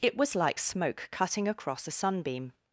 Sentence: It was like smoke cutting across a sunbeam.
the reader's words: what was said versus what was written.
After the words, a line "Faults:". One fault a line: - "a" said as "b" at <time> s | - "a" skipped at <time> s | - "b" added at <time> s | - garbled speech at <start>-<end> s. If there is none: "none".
It was like smoke cutting across a sunbeam.
Faults:
none